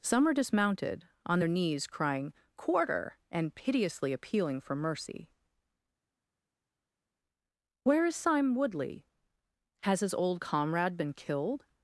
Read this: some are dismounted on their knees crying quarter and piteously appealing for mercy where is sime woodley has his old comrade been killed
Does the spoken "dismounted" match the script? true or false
true